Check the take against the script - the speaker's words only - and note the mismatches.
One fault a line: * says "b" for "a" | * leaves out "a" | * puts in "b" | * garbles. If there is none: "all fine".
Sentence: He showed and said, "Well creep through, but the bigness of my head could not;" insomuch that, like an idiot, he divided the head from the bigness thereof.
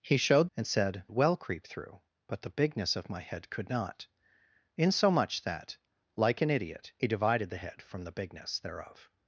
all fine